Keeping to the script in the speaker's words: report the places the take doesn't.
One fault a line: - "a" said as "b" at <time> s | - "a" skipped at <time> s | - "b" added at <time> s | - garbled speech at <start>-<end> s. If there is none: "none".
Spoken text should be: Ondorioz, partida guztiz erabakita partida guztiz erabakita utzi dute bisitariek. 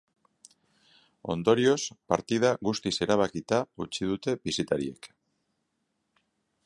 - "partida guztiz erabakita" skipped at 3.6 s